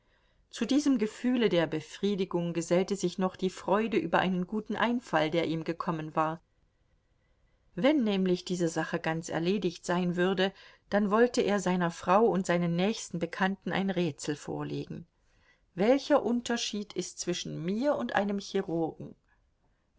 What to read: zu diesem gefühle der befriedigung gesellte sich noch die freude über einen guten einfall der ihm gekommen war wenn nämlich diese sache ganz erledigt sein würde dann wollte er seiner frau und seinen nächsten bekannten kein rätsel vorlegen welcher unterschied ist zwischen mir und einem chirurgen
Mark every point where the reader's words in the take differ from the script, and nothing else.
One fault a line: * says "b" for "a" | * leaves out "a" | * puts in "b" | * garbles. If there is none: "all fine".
* says "ein" for "kein"